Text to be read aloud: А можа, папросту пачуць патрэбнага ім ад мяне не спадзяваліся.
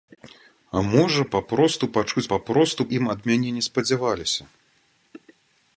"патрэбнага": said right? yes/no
no